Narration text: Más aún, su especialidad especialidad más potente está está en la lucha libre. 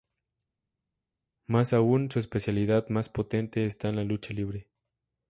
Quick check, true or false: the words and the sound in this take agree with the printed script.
false